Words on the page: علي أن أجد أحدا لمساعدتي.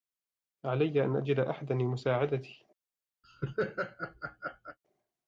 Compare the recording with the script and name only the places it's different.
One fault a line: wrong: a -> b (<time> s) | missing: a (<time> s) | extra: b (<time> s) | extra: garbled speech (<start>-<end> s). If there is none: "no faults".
no faults